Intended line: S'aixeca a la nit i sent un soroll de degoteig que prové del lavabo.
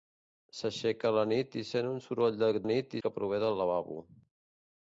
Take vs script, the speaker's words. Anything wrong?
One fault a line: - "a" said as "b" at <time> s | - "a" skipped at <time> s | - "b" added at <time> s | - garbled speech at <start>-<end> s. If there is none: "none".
- "degoteig" said as "nit" at 2.7 s